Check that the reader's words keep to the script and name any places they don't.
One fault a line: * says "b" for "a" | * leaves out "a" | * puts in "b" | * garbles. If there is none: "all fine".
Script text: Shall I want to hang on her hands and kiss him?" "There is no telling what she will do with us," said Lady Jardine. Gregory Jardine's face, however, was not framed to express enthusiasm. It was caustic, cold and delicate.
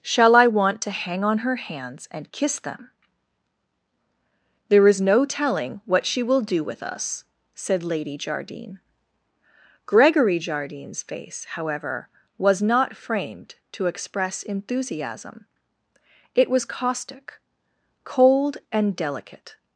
* says "them" for "him"